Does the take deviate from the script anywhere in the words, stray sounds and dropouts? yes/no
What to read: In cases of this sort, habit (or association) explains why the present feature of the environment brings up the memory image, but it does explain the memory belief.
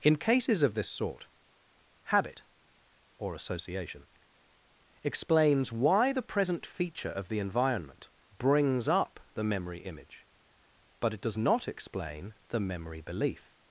yes